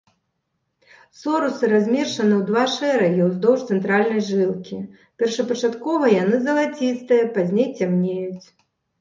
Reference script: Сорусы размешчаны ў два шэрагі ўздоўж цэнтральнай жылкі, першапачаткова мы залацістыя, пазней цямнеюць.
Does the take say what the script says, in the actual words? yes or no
no